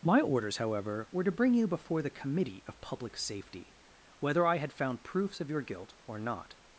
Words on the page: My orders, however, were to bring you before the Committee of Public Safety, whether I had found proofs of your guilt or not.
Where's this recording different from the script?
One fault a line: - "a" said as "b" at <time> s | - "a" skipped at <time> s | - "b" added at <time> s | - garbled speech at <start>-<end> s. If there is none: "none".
none